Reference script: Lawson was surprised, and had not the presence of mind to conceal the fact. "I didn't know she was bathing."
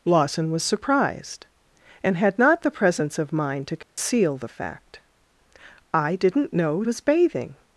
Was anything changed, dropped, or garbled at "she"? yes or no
yes